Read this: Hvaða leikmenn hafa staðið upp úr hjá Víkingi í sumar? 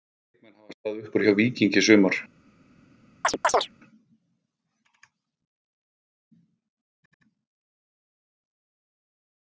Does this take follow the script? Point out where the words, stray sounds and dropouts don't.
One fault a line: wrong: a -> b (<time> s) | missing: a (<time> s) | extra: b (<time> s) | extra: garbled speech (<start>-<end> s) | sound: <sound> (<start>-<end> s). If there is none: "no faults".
sound: chirp (3.2-3.7 s)